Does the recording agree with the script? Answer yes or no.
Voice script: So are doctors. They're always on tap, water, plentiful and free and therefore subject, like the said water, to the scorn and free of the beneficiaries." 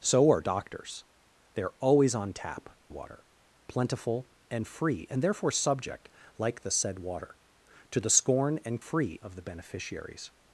yes